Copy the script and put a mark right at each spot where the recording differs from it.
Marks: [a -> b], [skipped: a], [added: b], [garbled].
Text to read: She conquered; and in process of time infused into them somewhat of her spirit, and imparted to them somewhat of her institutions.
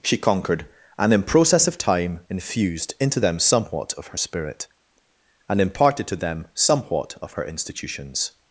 She conquered; and in process of time infused into them somewhat of her spirit, and imparted to them somewhat of her institutions.